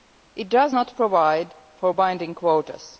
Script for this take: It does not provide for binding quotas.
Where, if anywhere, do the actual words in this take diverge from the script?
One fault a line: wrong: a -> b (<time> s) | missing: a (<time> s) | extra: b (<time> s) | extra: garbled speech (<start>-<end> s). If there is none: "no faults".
no faults